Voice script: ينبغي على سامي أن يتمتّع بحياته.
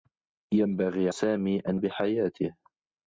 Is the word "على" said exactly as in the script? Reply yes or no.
no